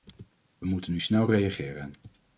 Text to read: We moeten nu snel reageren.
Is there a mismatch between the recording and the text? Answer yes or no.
no